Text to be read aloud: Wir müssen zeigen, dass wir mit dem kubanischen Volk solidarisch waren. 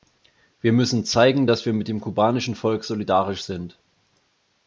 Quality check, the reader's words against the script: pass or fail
fail